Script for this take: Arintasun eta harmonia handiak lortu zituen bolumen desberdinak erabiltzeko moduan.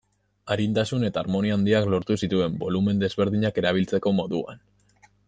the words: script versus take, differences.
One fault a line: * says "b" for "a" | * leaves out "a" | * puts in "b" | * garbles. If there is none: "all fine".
all fine